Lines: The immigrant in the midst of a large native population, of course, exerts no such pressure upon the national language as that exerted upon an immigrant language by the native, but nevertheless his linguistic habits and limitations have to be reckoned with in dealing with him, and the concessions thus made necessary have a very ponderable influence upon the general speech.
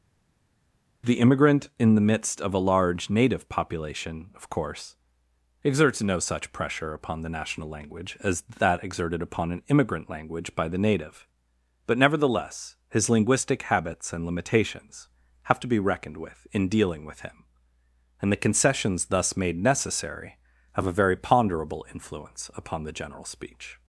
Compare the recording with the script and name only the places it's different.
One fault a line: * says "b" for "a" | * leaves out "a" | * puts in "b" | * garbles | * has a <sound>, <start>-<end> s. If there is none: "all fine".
all fine